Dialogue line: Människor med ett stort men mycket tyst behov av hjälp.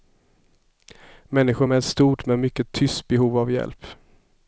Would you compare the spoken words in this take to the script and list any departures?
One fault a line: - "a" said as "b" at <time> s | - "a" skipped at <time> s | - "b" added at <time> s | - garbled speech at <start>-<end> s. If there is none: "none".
none